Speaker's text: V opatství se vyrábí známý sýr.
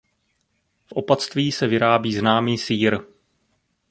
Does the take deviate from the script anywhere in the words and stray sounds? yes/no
no